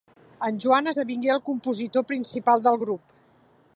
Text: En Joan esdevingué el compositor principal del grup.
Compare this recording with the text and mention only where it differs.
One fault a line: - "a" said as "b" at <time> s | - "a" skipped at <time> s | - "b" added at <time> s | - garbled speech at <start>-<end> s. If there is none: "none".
none